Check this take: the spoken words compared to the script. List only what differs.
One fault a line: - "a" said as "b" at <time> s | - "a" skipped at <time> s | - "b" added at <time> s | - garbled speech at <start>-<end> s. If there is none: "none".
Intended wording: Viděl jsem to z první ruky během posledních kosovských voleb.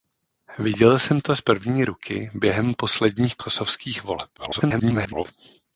- garbled speech at 4.4-5.3 s